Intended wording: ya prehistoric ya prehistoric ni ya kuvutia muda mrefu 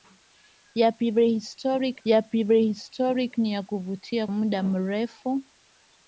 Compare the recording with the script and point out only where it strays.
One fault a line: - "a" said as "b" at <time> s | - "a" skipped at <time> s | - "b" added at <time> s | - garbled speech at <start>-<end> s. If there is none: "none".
none